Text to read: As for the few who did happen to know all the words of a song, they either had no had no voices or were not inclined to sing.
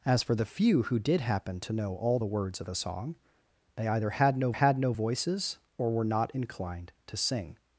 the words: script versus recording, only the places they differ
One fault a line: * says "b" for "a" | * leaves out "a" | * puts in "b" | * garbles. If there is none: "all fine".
all fine